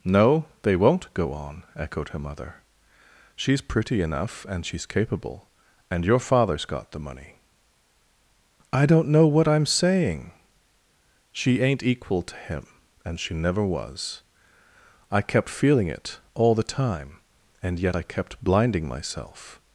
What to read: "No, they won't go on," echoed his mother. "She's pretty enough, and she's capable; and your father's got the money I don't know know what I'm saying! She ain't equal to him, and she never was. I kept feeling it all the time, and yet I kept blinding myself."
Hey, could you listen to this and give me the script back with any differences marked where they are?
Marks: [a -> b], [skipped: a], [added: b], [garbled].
"No, they won't go on," echoed [his -> her] mother. "She's pretty enough, and she's capable; and your father's got the money I don't know [skipped: know] what I'm saying! She ain't equal to him, and she never was. I kept feeling it all the time, and yet I kept blinding myself."